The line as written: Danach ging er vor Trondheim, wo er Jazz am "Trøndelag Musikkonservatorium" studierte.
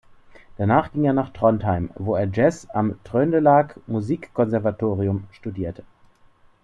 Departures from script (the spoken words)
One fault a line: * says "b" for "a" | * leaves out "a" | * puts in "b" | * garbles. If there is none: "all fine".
* says "nach" for "vor"